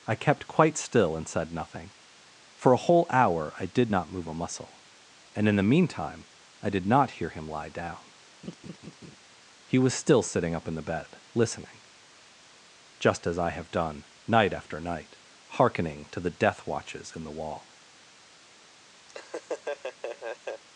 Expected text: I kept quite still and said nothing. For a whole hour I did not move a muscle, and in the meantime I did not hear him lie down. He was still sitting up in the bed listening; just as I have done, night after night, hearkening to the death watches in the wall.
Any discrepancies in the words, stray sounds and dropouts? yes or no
yes